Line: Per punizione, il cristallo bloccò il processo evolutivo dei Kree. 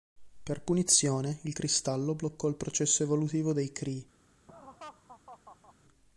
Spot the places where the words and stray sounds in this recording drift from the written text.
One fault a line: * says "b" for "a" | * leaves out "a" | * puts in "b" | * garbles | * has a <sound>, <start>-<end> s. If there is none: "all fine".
* has a laugh, 4.5-5.7 s